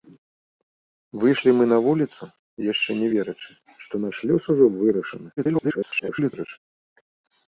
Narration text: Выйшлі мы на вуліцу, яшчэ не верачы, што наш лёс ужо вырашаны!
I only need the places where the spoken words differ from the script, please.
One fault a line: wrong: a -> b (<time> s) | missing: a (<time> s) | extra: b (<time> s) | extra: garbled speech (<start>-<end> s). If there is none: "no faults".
extra: garbled speech (5.4-6.6 s)